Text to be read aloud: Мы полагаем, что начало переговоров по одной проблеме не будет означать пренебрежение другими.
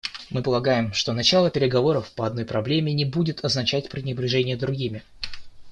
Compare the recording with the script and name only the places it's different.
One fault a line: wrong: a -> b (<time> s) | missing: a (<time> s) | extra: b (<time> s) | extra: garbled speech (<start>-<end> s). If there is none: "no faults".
no faults